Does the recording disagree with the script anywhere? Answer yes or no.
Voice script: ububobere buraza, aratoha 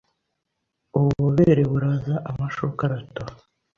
yes